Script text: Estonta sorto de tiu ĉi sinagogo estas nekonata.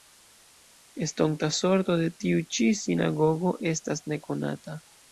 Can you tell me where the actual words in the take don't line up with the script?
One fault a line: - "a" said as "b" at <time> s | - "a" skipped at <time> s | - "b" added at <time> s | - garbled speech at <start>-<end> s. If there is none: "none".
none